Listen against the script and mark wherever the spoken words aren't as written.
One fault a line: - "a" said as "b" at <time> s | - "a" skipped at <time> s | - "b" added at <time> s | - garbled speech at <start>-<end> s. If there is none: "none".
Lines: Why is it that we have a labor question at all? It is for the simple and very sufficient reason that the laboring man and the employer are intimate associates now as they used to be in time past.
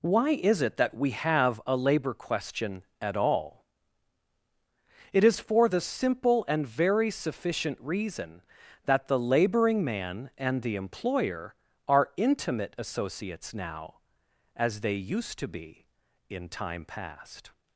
none